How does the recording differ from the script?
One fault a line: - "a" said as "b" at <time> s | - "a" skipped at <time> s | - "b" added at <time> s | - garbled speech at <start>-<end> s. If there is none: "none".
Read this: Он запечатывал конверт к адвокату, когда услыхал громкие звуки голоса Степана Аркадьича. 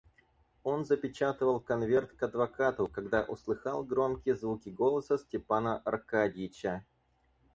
none